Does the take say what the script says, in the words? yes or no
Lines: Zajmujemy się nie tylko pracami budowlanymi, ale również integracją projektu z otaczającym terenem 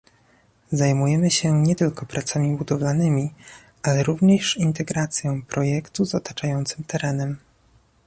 yes